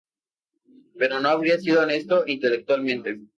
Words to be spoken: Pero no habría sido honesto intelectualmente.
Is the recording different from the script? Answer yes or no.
no